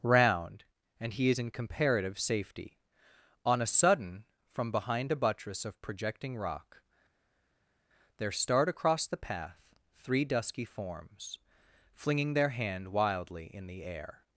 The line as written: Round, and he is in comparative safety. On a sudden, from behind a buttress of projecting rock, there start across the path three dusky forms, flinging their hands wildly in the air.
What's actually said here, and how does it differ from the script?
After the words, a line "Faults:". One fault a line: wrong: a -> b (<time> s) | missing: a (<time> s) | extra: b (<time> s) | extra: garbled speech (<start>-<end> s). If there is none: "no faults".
Round, and he is in comparative safety. On a sudden, from behind a buttress of projecting rock, there start across the path three dusky forms, flinging their hand wildly in the air.
Faults:
wrong: hands -> hand (12.5 s)